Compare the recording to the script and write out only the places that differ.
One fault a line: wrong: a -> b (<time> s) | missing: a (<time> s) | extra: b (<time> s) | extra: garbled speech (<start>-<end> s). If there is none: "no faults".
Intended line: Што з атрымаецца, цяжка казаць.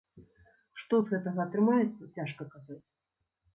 extra: гэтага (1.2 s)